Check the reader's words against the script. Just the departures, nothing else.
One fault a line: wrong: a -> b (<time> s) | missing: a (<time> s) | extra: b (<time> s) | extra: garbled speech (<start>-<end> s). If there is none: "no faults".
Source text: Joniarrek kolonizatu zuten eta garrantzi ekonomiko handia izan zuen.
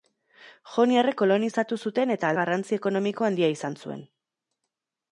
no faults